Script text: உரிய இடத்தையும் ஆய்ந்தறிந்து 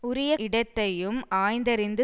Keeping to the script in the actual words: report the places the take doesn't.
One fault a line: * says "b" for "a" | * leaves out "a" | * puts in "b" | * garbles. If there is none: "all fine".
all fine